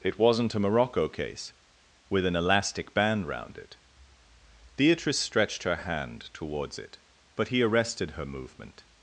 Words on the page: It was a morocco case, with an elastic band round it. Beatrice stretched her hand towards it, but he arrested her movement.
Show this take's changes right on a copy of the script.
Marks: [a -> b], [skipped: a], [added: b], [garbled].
It [was -> wasn't] a morocco case, with an elastic band round it. Beatrice stretched her hand towards it, but he arrested her movement.